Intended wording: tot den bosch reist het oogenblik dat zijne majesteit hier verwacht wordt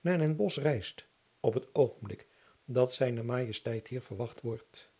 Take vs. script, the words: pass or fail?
fail